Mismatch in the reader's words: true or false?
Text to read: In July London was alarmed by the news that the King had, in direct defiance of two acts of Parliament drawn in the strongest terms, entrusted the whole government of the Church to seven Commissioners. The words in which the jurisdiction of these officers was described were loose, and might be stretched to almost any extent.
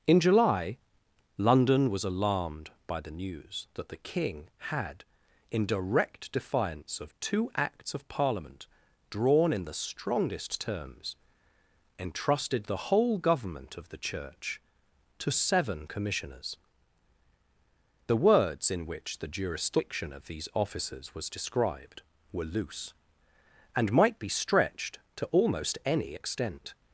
false